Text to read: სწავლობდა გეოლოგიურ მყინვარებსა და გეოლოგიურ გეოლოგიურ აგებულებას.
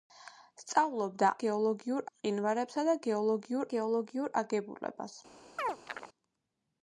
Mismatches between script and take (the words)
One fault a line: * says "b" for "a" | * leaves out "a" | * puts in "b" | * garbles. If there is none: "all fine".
all fine